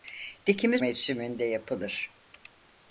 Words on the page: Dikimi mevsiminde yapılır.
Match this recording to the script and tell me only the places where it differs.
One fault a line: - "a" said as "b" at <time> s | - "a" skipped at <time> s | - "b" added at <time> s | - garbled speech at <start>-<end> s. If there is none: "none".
none